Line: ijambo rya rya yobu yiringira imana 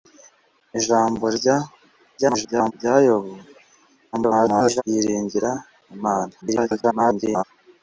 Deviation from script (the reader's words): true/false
true